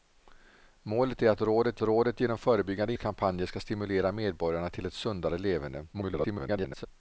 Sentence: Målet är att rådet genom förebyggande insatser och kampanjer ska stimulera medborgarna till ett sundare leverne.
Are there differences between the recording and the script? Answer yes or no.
yes